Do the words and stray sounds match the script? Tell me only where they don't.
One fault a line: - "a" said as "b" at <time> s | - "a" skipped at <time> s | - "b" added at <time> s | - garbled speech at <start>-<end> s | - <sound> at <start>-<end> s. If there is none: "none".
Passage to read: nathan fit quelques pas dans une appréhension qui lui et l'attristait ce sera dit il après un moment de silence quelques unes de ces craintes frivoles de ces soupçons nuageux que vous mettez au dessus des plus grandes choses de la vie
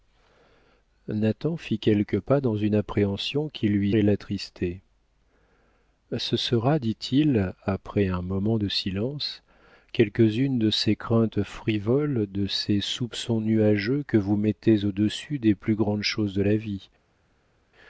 none